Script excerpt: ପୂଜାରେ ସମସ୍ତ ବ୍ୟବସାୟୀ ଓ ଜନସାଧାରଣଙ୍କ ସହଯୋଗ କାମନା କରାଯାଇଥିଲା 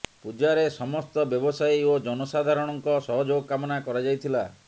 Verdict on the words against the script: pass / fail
pass